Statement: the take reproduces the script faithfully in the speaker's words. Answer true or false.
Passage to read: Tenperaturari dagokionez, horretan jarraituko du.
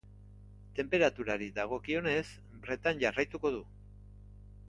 true